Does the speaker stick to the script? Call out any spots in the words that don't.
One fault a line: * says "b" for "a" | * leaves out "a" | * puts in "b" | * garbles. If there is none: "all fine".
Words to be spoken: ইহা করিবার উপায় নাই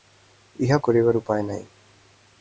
all fine